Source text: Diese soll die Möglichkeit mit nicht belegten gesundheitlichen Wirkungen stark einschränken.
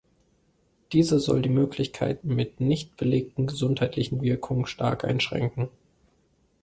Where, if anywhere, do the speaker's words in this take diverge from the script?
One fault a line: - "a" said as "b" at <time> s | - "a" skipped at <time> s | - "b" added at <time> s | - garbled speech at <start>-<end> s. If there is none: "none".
none